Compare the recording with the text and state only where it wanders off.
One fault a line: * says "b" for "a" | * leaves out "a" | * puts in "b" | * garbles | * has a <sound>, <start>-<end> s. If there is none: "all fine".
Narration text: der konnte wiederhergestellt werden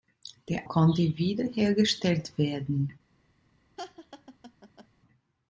* has a laugh, 3.8-4.9 s